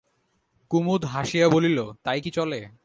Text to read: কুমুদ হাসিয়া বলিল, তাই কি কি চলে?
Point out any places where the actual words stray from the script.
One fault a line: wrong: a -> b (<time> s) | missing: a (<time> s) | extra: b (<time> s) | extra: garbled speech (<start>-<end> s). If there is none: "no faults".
missing: কি (2.3 s)